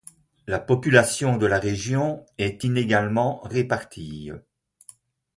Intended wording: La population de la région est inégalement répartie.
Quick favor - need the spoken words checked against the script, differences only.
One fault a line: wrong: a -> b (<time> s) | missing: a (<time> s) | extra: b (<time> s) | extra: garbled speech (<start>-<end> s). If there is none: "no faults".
no faults